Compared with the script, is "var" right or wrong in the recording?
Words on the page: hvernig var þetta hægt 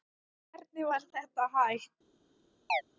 right